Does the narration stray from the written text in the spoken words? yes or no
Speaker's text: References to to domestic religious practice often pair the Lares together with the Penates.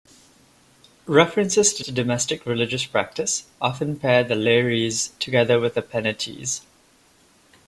no